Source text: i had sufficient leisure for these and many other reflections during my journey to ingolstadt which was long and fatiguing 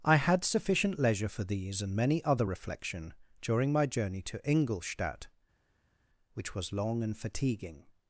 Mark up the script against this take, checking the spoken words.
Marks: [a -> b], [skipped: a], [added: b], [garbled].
i had sufficient leisure for these and many other [reflections -> reflection] during my journey to ingolstadt which was long and fatiguing